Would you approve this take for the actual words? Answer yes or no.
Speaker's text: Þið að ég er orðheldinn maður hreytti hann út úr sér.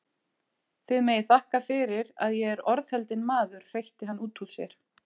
no